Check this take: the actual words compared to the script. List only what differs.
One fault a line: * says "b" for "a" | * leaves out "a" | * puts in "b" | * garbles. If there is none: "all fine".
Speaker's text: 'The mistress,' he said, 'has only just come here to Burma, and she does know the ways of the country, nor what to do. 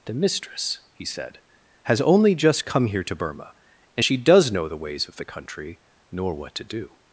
all fine